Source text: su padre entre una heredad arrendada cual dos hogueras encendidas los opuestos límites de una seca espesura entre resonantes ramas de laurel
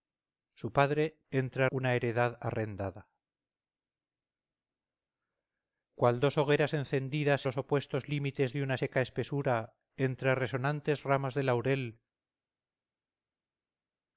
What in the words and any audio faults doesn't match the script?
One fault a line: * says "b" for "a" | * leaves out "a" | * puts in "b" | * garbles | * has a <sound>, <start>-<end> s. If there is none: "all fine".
all fine